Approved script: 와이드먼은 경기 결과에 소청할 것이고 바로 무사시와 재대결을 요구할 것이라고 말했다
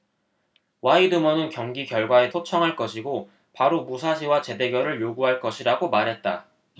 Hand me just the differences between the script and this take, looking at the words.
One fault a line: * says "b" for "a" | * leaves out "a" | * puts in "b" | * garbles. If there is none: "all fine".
all fine